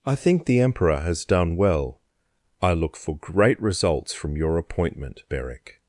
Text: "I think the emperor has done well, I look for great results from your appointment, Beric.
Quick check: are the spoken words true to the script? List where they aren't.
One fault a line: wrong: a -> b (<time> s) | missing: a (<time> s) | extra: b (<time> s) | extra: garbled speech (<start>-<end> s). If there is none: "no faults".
no faults